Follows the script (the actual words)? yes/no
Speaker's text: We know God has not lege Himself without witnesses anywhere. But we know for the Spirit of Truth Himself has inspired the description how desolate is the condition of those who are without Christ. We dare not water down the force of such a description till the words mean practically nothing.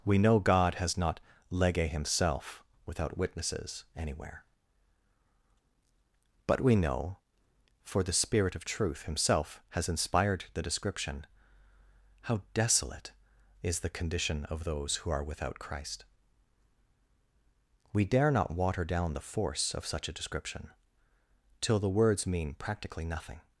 yes